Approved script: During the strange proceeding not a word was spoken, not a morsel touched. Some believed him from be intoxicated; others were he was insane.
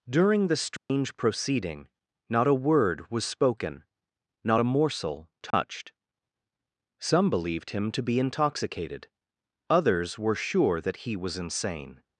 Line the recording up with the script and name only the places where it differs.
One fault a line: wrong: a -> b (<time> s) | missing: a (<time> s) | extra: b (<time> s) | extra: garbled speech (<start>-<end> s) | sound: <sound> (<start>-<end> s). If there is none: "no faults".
sound: dropout (0.8-0.9 s)
sound: dropout (5.5-5.5 s)
wrong: from -> to (7.9 s)
extra: sure that (10.4 s)